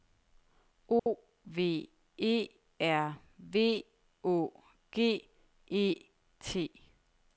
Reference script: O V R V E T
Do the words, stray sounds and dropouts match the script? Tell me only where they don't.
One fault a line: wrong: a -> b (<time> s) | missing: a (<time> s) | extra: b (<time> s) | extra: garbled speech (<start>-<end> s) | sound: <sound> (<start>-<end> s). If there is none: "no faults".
sound: dropout (1.0-1.1 s)
extra: E (2.2 s)
extra: Å G (4.2 s)